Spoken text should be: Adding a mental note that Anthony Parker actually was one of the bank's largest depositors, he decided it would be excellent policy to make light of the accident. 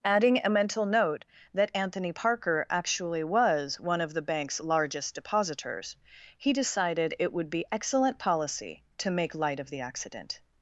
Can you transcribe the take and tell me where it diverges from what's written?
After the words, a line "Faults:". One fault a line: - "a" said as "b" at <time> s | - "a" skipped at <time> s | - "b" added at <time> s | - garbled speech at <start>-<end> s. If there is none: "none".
Adding a mental note that Anthony Parker actually was one of the bank's largest depositors, he decided it would be excellent policy to make light of the accident.
Faults:
none